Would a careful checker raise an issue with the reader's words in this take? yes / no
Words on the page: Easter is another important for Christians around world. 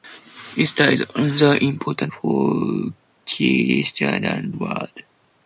no